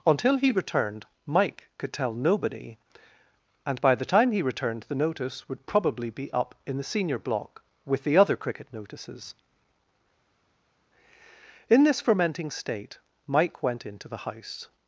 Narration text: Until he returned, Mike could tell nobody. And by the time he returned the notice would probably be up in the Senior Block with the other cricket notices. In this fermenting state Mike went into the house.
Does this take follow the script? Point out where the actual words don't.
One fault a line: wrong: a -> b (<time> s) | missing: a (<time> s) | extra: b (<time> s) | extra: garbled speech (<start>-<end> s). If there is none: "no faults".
no faults